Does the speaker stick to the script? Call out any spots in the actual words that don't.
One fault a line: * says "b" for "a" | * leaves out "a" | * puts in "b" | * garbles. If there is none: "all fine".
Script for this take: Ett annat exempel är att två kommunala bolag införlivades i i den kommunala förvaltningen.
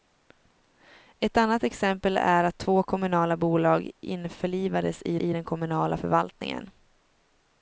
all fine